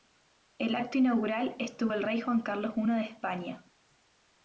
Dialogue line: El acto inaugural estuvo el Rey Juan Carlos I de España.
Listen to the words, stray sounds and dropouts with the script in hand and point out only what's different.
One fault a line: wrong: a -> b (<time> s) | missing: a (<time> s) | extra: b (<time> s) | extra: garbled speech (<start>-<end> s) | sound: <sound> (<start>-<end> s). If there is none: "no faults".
no faults